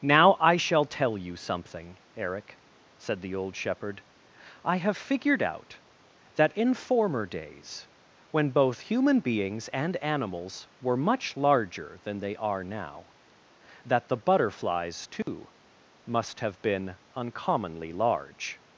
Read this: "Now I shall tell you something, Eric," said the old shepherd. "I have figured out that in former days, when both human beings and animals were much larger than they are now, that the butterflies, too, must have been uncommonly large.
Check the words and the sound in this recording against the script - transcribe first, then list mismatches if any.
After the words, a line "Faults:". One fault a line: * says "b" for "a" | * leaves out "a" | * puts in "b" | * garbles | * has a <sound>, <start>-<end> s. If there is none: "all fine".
"Now I shall tell you something, Eric," said the old shepherd. "I have figured out that in former days, when both human beings and animals were much larger than they are now, that the butterflies, too, must have been uncommonly large.
Faults:
* has a dropout, 15.2-15.3 s